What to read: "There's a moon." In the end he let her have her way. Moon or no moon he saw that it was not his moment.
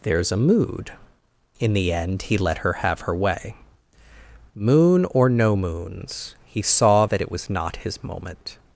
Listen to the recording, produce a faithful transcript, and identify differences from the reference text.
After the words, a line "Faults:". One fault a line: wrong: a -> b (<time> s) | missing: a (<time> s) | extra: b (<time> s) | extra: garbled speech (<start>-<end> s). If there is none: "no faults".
"There's a mood." In the end he let her have her way. Moon or no moons he saw that it was not his moment.
Faults:
wrong: moon -> mood (0.4 s)
wrong: moon -> moons (5.5 s)